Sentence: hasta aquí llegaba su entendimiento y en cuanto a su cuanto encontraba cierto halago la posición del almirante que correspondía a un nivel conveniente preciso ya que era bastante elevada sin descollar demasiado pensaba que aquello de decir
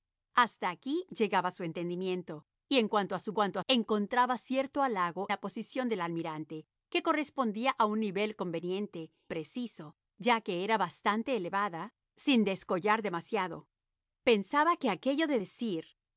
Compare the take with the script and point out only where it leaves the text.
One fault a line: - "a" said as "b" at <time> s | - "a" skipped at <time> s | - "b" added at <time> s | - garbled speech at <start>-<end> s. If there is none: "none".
none